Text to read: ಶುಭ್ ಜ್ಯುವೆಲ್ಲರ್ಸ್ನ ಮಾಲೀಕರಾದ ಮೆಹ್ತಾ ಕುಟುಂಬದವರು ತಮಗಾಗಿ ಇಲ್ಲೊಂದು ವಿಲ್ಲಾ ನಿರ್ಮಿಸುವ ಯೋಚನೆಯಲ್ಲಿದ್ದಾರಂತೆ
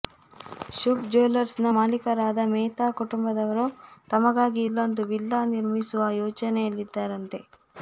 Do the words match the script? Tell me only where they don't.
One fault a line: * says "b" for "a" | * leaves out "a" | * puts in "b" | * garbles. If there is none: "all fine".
all fine